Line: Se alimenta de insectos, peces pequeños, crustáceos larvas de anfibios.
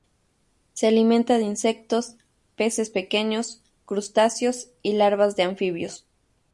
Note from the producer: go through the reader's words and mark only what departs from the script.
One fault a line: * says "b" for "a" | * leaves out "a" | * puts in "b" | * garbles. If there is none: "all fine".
* puts in "y"